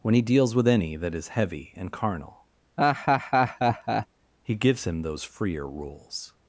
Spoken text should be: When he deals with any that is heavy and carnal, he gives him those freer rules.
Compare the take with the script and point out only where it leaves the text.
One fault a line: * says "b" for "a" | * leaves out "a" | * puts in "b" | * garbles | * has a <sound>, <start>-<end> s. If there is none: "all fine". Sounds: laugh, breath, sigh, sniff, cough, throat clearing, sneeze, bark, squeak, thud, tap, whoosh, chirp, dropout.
* has a laugh, 2.8-4.1 s